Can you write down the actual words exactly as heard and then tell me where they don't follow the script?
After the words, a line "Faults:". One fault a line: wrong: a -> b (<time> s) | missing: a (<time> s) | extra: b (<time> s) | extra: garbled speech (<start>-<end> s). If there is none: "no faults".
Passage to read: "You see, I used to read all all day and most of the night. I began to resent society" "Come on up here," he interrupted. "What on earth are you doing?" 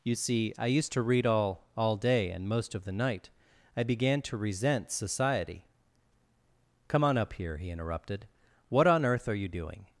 "You see, I used to read all all day and most of the night. I began to resent society" "Come on up here," he interrupted. "What on earth are you doing?"
Faults:
no faults